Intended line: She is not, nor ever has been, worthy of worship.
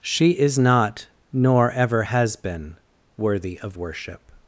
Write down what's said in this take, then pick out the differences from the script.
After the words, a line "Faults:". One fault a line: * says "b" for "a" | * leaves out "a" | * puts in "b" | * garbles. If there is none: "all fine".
She is not, nor ever has been, worthy of worship.
Faults:
all fine